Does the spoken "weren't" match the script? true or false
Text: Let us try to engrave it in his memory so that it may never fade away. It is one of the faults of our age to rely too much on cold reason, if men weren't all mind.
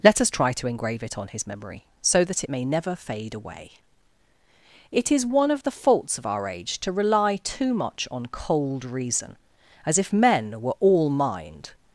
false